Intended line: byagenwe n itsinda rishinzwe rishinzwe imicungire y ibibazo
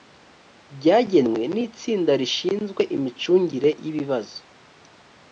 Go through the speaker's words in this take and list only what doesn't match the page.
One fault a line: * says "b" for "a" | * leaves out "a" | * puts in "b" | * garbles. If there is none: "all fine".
* leaves out "rishinzwe"